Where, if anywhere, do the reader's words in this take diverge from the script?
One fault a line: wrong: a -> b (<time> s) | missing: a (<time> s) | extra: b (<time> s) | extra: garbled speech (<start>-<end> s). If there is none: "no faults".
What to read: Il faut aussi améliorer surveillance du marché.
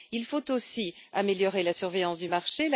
extra: la (1.6 s)